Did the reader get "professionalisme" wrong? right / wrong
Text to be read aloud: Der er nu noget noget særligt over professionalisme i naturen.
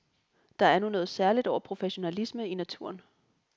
right